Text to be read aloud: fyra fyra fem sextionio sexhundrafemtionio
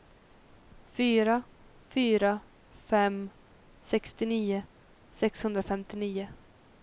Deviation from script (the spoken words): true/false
false